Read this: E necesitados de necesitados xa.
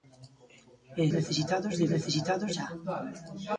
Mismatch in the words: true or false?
false